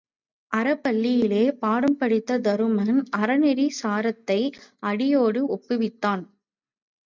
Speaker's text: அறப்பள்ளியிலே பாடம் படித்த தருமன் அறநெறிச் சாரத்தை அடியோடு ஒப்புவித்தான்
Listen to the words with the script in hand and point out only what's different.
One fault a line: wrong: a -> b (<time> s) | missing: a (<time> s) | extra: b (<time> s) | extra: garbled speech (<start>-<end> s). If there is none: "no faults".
no faults